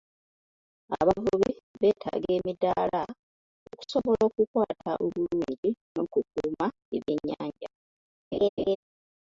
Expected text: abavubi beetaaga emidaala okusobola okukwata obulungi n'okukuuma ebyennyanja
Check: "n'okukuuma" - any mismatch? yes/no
no